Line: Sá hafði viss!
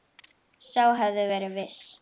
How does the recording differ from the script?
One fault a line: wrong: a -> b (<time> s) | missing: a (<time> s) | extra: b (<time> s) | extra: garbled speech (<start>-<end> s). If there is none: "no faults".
extra: verið (1.3 s)